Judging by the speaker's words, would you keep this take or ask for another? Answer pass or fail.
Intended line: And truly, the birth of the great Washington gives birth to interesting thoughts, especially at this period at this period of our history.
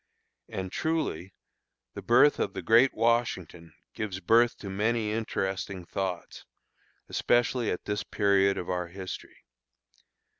fail